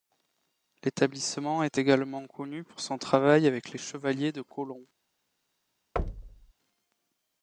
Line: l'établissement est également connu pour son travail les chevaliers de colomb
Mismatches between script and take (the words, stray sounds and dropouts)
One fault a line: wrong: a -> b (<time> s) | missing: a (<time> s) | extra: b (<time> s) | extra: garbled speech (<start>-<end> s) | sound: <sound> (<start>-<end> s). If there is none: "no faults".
extra: avec (3.5 s)
sound: thud (6.0-6.5 s)